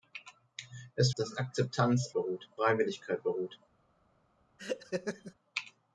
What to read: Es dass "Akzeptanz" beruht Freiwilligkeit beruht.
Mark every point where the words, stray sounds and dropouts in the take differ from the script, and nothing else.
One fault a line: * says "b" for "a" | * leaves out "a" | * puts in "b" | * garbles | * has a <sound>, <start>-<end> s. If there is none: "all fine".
* has a laugh, 4.6-5.3 s